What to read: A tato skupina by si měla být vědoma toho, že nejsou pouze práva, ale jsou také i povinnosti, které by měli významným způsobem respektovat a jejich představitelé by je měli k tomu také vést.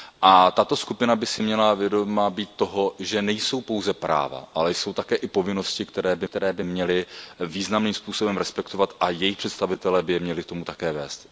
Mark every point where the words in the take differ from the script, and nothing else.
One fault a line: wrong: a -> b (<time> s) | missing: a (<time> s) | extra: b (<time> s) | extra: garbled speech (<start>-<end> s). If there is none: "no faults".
extra: které by (6.2 s)